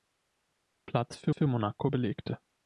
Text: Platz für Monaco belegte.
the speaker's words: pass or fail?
fail